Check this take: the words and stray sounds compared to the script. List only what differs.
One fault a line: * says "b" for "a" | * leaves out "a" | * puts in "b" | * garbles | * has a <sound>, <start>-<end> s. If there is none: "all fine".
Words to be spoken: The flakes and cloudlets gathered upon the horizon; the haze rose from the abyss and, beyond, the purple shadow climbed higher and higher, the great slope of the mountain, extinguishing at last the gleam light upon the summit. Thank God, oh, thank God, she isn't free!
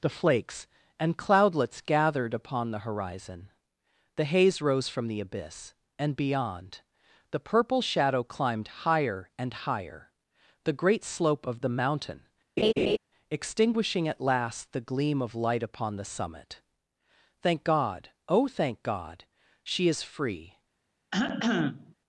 * has a laugh, 12.6-13.0 s
* puts in "of"
* says "is" for "isn't"
* has a cough, 21.1-21.9 s